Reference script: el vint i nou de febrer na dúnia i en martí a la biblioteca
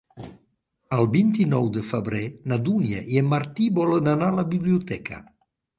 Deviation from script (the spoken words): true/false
true